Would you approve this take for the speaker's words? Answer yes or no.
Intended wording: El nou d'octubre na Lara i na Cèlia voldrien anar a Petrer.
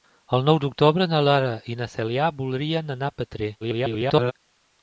no